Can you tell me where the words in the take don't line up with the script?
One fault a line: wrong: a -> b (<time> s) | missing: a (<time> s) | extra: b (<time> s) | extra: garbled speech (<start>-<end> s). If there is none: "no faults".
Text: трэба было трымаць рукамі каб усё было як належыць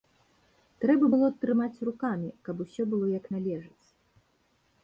no faults